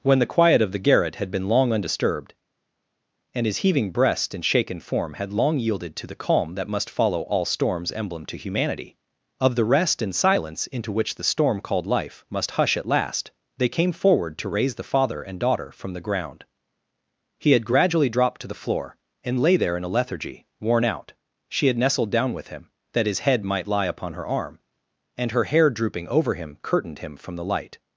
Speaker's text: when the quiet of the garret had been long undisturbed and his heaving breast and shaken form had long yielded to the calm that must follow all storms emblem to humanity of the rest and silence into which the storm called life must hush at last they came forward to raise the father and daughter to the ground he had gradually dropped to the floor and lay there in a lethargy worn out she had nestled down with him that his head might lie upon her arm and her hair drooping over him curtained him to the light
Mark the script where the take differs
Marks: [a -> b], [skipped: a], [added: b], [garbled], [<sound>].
when the quiet of the garret had been long undisturbed and his heaving breast and shaken form had long yielded to the calm that must follow all storms emblem to humanity of the rest and silence into which the storm called life must hush at last they came forward to raise the father and daughter [to -> from] the ground he had gradually dropped to the floor and lay there in a lethargy worn out she had nestled down with him that his head might lie upon her arm and her hair drooping over him curtained him [to -> from] the light